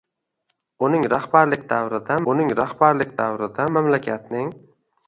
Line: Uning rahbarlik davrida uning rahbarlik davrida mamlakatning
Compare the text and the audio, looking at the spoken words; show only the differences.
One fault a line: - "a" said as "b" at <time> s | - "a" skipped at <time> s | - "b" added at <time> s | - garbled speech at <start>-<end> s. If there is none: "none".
none